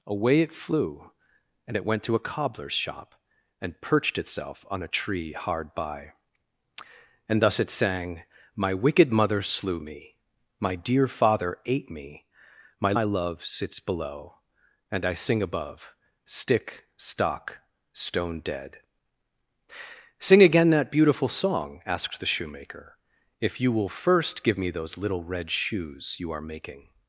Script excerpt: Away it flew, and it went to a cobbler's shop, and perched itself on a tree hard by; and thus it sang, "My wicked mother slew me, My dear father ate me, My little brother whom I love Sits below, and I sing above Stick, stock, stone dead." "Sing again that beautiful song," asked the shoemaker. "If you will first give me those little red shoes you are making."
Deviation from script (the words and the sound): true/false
true